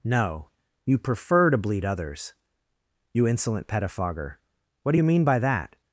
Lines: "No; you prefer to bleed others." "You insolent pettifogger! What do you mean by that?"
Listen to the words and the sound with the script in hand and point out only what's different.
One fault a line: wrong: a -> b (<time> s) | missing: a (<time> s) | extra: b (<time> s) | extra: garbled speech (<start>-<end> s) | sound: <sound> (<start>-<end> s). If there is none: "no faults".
no faults